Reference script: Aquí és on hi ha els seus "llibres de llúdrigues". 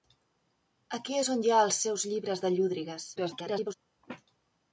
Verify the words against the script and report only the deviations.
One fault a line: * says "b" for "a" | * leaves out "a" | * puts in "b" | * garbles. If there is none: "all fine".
* garbles